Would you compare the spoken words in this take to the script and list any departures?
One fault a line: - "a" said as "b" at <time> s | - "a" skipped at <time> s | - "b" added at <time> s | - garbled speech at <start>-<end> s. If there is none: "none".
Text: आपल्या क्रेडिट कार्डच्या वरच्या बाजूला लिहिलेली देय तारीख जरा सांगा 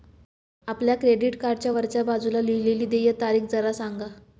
none